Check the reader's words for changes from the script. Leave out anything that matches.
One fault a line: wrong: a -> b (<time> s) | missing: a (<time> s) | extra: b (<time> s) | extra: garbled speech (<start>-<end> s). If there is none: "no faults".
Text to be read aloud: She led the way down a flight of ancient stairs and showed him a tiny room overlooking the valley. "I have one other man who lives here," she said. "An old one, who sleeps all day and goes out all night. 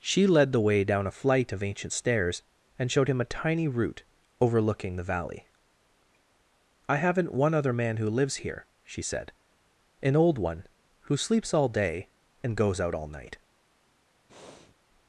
wrong: room -> root (3.7 s)
wrong: have -> haven't (7.0 s)